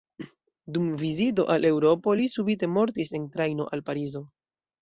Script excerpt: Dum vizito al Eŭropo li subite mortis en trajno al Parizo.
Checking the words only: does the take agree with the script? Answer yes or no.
yes